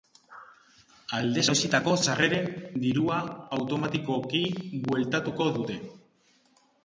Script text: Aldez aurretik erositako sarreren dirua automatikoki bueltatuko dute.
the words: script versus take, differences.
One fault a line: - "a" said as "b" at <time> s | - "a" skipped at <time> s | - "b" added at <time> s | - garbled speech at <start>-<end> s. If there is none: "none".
- "aurretik" skipped at 1.4 s